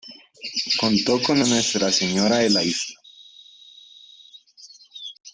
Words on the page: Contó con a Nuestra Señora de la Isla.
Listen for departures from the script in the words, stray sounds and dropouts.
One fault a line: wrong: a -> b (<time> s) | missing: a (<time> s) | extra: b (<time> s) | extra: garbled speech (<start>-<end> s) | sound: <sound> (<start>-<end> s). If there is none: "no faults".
no faults